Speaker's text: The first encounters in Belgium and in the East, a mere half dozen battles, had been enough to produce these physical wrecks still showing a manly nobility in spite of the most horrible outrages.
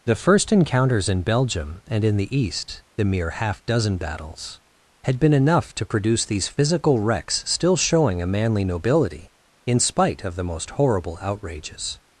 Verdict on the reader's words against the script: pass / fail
fail